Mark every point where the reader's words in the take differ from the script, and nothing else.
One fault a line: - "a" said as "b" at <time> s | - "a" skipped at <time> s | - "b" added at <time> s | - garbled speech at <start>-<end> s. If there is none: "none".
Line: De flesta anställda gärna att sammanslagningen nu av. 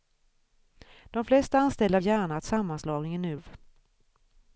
none